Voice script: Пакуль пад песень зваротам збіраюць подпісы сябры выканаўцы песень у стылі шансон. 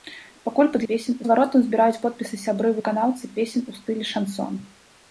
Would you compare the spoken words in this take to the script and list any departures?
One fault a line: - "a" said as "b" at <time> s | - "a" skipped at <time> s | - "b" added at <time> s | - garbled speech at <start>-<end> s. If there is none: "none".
none